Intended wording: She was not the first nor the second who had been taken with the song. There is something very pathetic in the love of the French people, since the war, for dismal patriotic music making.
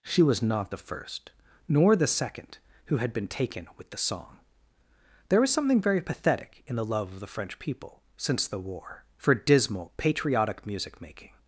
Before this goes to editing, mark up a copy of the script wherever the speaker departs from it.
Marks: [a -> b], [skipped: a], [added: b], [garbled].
She was not the first nor the second who had been taken with the song. There [is -> was] something very pathetic in the love of the French people, since the war, for dismal patriotic music making.